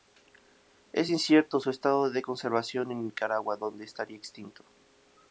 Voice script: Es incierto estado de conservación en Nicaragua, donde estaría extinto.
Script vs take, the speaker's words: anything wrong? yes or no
yes